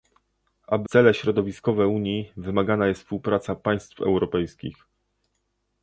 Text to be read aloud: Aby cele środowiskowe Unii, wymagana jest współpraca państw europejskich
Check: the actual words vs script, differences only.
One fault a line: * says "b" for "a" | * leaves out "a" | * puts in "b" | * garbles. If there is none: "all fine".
all fine